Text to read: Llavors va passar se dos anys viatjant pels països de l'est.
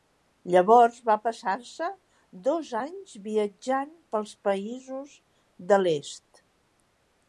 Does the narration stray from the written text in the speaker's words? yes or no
no